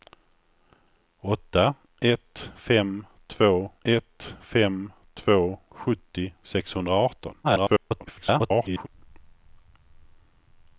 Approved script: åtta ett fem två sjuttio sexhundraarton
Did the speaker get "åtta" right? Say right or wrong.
right